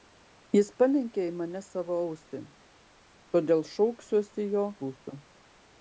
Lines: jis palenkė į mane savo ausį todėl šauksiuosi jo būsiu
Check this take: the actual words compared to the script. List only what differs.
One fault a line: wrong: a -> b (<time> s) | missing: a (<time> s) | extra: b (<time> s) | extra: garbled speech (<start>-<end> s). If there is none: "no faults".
no faults